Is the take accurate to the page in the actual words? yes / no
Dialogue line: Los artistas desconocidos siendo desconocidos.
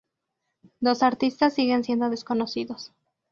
no